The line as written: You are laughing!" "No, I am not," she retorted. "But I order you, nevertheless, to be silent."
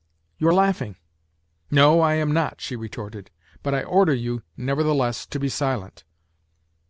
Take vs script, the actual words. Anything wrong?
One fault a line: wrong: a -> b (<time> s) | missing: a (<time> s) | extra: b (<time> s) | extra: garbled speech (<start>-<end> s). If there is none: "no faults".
no faults